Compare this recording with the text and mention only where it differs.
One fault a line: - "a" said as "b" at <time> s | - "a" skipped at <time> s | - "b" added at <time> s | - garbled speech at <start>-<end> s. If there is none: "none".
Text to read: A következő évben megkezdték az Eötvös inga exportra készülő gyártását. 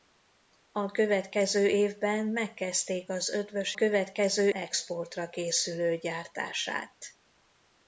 - "inga" said as "következő" at 3.7 s